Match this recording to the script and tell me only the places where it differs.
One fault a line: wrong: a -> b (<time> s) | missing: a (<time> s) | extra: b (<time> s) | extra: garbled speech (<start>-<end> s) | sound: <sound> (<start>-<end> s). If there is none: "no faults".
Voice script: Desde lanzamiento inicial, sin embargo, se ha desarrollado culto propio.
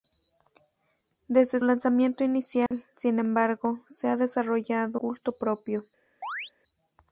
sound: dropout (2.7-2.7 s)
sound: chirp (6.2-6.5 s)